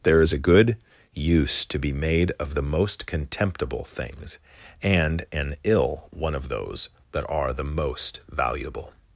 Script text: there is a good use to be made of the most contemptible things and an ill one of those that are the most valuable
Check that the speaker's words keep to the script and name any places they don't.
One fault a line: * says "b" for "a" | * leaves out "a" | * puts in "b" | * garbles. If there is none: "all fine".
all fine